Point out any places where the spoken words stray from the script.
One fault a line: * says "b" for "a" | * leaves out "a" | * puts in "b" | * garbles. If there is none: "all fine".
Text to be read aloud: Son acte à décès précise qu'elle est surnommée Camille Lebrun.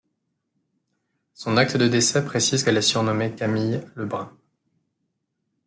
* says "de" for "à"